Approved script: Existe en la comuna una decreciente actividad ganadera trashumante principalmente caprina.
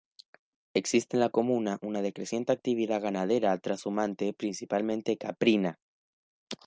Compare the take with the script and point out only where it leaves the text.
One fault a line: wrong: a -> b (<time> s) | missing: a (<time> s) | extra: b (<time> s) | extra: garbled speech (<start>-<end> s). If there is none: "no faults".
no faults